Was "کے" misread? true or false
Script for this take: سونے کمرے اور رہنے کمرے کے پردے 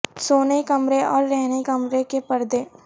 false